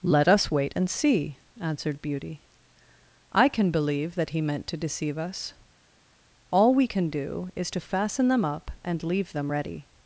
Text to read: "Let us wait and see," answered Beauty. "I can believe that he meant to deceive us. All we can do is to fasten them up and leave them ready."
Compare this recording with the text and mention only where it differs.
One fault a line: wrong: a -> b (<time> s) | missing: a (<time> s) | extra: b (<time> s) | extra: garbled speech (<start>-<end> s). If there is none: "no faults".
no faults